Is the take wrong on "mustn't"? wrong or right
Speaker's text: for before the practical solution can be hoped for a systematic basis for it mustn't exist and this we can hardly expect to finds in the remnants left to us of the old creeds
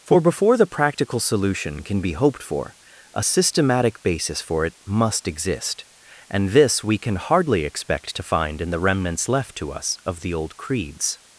wrong